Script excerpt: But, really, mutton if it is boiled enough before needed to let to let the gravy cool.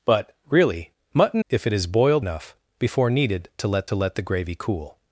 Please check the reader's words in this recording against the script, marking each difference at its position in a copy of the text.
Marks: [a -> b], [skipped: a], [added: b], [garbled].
But, really, mutton if it is boiled enough before needed to let to let the gravy cool.